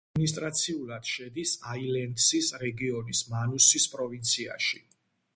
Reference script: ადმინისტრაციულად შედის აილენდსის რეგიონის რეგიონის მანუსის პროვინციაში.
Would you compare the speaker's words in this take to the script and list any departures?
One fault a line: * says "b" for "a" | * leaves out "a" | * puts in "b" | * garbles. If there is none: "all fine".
* leaves out "რეგიონის"